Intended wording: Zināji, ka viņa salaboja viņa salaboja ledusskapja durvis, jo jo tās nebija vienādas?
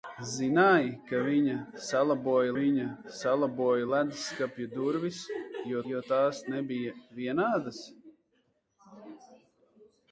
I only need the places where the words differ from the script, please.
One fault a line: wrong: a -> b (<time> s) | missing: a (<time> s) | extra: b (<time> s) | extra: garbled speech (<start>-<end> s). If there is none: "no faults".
no faults